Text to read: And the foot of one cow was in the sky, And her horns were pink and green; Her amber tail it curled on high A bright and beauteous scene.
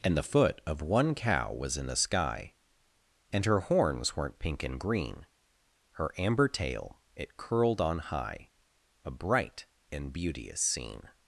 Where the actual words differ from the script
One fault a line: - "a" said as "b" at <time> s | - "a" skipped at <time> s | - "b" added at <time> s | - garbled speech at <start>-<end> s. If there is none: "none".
- "were" said as "weren't" at 4.2 s